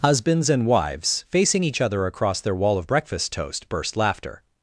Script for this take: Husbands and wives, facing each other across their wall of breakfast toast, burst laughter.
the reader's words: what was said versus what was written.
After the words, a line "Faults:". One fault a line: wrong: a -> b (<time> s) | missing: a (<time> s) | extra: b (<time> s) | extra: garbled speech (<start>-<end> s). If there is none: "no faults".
Husbands and wives, facing each other across their wall of breakfast toast, burst laughter.
Faults:
no faults